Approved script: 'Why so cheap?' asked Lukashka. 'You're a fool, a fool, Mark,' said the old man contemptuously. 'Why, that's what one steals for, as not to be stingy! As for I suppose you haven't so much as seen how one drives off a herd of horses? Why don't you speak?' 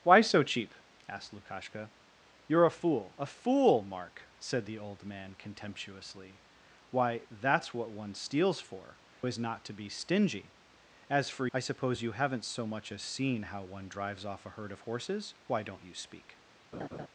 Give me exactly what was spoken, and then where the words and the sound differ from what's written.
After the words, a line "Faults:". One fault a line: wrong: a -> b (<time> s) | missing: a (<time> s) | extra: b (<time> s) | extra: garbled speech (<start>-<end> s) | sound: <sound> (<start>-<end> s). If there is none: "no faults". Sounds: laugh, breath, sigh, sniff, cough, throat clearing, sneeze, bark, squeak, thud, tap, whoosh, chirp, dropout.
'Why so cheap?' asked Lukashka. 'You're a fool, a fool, Mark,' said the old man contemptuously. 'Why, that's what one steals for, as not to be stingy! As for I suppose you haven't so much as seen how one drives off a herd of horses? Why don't you speak?'
Faults:
sound: laugh (16.7-17.1 s)